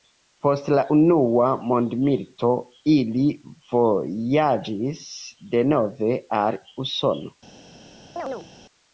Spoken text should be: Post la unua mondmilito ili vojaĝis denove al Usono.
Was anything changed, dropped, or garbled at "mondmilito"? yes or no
no